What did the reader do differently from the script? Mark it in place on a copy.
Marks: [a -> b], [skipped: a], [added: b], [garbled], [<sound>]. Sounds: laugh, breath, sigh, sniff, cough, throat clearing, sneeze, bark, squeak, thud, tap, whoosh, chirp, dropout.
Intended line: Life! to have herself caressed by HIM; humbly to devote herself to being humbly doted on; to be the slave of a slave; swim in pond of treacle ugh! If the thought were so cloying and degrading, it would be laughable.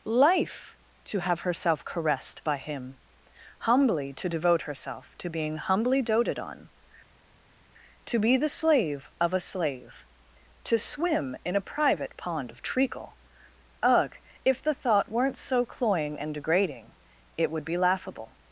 Life! to have herself caressed by HIM; humbly to devote herself to being humbly doted on; to be the slave of a slave; [added: to] swim in [added: a private] pond of treacle ugh! If the thought [were -> weren't] so cloying and degrading, it would be laughable.